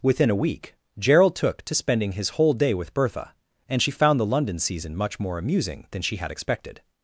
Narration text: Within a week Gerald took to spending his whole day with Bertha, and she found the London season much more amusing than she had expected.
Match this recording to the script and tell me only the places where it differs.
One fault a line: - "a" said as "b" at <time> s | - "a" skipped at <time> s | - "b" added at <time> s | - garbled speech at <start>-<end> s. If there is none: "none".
none